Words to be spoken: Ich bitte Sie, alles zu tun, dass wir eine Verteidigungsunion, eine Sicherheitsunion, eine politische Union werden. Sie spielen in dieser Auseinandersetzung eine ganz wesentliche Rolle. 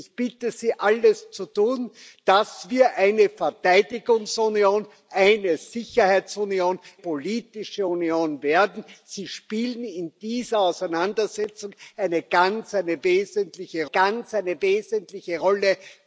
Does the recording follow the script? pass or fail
fail